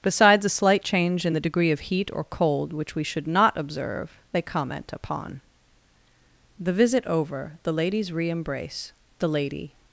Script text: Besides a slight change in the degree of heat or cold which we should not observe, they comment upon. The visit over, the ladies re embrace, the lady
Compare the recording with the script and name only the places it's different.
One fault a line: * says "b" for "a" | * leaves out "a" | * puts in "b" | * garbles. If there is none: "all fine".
all fine